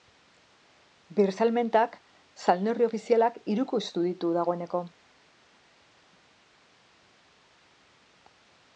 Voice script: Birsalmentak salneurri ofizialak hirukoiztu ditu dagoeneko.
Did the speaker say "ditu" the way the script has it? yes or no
yes